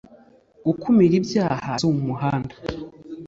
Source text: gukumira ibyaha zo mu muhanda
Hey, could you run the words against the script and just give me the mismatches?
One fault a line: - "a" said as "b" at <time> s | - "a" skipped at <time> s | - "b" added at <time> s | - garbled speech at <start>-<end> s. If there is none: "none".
none